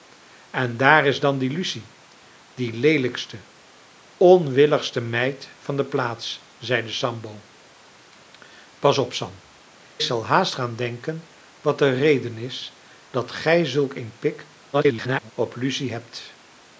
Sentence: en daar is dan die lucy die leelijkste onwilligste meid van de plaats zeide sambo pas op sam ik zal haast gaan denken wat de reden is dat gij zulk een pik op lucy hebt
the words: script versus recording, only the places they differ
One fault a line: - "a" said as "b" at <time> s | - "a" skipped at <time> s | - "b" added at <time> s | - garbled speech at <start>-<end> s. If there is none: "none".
- "ik" skipped at 9.4 s
- garbled speech at 14.7-15.3 s